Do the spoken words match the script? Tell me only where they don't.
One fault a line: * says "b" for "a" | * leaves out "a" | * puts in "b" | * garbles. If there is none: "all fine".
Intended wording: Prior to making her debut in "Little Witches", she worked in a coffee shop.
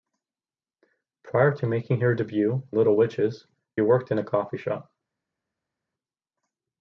* leaves out "in"
* leaves out "she"